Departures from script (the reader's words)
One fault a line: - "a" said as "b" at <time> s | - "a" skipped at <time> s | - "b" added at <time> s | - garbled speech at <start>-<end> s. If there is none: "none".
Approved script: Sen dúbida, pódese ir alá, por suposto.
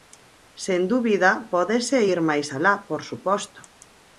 - "máis" added at 2.3 s